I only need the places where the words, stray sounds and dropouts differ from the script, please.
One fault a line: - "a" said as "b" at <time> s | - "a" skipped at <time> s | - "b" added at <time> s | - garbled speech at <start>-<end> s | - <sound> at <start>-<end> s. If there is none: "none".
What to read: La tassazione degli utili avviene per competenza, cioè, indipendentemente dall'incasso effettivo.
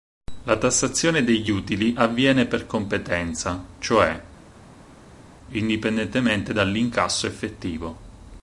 none